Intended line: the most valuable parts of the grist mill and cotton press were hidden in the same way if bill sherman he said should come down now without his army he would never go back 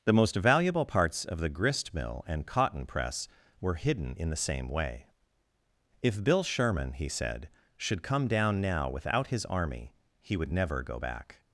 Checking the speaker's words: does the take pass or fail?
pass